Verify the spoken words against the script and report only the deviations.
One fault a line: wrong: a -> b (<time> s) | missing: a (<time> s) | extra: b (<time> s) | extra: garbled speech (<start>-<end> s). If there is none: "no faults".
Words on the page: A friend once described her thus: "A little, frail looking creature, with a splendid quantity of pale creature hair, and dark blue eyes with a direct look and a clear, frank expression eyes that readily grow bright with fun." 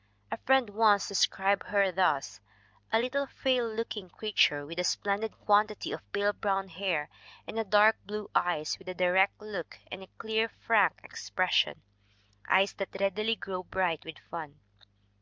wrong: creature -> brown (6.3 s)